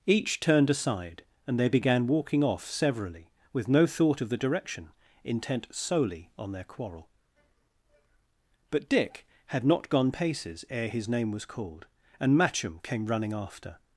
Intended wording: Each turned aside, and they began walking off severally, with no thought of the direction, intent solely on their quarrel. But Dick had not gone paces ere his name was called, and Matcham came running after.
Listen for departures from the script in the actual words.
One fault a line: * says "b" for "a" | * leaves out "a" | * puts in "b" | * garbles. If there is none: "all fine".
all fine